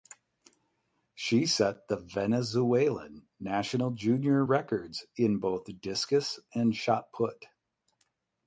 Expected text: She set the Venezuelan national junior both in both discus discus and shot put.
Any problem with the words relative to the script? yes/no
yes